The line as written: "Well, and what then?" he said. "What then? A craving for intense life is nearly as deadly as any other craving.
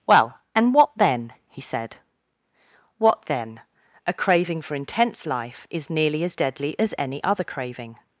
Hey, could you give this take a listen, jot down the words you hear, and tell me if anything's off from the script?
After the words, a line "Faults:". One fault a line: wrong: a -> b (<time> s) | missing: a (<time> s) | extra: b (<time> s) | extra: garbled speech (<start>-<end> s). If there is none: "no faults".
"Well, and what then?" he said. "What then? A craving for intense life is nearly as deadly as any other craving.
Faults:
no faults